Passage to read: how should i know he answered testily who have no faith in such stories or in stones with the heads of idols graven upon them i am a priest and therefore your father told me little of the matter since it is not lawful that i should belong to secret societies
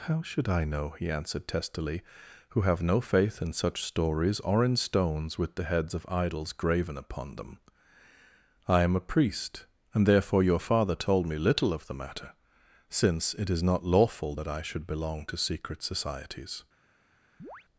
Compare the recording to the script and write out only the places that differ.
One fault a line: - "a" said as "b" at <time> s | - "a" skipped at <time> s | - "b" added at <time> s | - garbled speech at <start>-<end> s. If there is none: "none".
none